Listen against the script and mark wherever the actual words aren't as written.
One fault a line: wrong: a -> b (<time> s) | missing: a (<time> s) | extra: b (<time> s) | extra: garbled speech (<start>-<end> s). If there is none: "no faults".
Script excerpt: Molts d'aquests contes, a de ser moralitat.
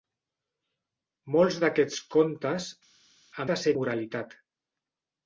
no faults